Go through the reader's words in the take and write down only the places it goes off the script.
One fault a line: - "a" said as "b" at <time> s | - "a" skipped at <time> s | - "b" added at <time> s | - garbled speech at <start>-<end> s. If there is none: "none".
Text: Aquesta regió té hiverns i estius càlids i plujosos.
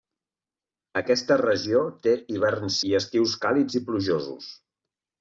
none